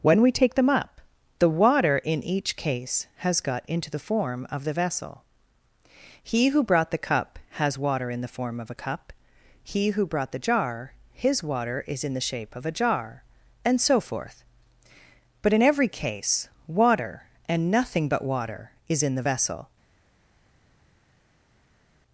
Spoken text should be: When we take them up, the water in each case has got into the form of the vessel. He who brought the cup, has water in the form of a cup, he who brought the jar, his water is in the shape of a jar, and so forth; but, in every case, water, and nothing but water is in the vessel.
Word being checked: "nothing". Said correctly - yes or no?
yes